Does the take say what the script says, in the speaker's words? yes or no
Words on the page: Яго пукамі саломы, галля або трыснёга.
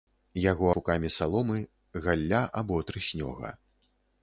yes